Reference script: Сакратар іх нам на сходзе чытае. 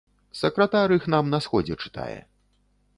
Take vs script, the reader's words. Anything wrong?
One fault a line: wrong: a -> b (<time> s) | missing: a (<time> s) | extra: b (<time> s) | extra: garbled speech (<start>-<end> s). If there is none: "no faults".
no faults